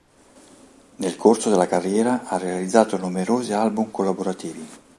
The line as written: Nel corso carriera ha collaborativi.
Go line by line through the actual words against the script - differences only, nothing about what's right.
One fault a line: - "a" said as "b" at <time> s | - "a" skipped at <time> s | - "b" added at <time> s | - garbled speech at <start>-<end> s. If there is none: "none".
- "della" added at 1.5 s
- "realizzato numerosi album" added at 2.4 s